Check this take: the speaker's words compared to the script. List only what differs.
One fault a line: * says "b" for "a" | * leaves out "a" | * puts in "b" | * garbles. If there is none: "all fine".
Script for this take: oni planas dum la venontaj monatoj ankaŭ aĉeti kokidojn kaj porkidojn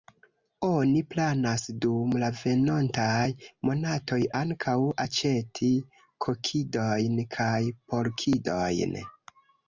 all fine